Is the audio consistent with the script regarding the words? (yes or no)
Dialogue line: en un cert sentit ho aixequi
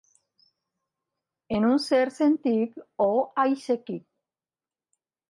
yes